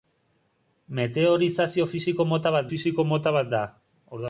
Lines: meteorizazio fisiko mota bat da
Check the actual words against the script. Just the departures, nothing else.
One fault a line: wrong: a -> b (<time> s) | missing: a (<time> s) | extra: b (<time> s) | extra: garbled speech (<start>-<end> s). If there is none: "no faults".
extra: fisiko mota bat (2.7 s)